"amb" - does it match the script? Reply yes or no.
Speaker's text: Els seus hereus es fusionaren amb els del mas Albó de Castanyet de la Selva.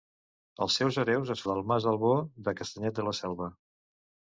no